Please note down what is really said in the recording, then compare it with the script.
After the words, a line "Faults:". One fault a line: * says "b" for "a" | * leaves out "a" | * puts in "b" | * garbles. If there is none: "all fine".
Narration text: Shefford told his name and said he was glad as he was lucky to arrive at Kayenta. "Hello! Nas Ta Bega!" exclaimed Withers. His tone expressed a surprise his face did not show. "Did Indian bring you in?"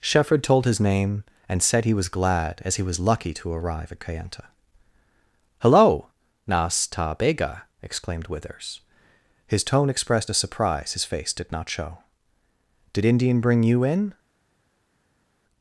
Shefford told his name and said he was glad as he was lucky to arrive at Kayenta. "Hello! Nas Ta Bega!" exclaimed Withers. His tone expressed a surprise his face did not show. "Did Indian bring you in?"
Faults:
all fine